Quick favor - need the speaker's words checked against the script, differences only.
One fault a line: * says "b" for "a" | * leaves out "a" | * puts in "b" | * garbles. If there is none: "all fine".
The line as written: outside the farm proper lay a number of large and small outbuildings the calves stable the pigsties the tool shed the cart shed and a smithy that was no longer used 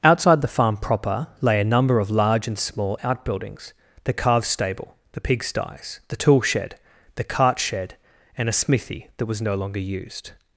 all fine